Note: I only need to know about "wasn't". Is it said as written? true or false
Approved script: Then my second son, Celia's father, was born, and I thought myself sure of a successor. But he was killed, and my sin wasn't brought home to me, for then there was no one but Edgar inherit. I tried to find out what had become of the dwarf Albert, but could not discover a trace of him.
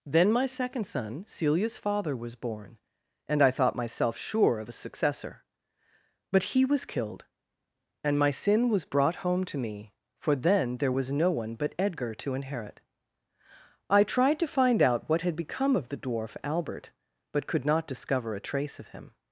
false